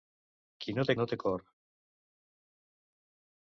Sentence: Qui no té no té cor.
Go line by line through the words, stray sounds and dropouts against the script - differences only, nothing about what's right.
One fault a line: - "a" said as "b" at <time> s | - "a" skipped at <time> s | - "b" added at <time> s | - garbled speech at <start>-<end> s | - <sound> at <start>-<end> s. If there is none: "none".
none